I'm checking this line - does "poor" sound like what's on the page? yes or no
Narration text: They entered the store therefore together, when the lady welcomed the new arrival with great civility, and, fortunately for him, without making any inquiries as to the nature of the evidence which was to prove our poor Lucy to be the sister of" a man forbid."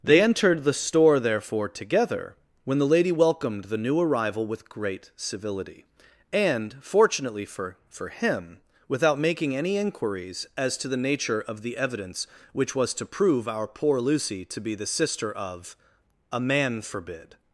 yes